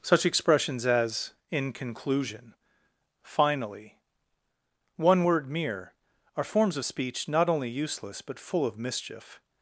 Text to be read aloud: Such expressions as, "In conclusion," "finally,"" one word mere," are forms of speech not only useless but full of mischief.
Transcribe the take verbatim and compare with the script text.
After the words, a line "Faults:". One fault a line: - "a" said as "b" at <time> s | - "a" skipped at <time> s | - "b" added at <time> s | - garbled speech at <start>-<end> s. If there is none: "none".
Such expressions as, "In conclusion," "finally,"" one word mere," are forms of speech not only useless but full of mischief.
Faults:
none